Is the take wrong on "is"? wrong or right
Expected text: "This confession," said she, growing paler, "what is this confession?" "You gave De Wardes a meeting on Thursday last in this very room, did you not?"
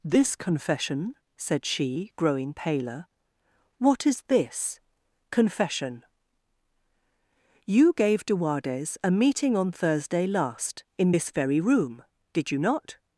right